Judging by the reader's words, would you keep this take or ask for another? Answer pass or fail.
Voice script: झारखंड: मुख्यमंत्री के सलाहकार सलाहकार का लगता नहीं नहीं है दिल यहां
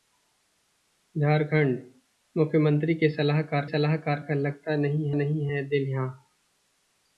pass